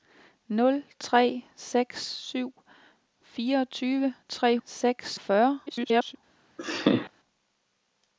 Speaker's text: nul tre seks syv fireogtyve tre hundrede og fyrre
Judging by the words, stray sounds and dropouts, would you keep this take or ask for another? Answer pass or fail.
fail